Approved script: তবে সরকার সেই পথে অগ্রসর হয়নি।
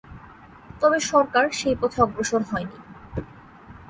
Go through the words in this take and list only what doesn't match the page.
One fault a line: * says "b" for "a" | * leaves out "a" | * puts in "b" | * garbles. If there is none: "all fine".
all fine